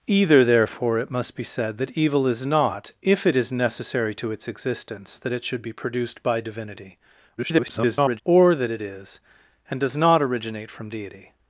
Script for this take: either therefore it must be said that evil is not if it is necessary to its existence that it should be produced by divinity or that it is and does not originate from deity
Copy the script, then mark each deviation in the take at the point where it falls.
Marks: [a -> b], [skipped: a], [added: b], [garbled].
either therefore it must be said that evil is not if it is necessary to its existence that it should be produced by divinity [garbled] or that it is and does not originate from deity